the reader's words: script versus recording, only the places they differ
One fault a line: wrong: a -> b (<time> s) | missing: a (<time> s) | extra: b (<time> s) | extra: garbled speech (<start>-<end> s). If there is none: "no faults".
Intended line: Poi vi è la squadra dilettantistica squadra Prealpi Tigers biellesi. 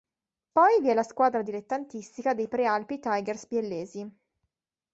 wrong: squadra -> dei (2.3 s)